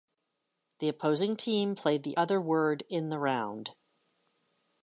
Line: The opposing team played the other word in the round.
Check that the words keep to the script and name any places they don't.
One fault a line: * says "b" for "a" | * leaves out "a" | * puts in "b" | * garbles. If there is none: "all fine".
all fine